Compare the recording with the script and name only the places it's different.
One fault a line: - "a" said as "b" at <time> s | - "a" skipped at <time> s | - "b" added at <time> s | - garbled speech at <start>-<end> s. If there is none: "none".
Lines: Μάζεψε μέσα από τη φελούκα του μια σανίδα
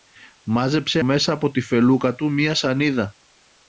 none